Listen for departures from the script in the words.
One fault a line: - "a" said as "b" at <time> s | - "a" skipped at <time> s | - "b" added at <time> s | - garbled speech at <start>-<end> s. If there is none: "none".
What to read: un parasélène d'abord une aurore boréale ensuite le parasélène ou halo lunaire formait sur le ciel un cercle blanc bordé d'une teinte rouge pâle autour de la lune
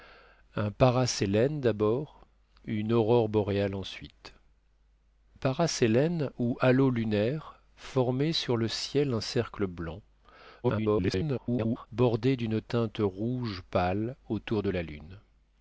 - "le" skipped at 4.3 s
- garbled speech at 10.6-11.9 s